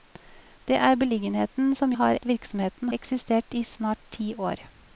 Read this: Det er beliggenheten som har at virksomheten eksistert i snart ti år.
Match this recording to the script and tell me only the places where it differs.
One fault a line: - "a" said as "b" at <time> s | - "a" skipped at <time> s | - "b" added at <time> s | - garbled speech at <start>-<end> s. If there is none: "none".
none